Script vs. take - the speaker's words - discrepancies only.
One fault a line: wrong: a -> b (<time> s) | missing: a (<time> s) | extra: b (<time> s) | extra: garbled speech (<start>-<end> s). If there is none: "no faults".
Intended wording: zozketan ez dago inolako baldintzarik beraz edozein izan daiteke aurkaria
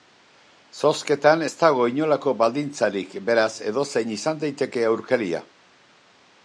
no faults